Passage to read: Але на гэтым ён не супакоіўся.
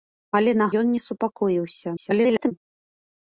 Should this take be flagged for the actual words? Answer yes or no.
yes